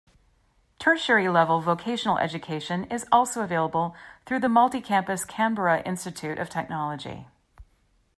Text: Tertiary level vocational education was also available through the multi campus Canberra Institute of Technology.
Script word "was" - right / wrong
wrong